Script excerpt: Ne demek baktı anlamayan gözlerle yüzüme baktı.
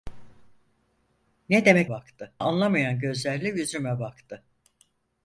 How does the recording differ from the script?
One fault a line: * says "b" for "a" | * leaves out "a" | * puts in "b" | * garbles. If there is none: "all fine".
all fine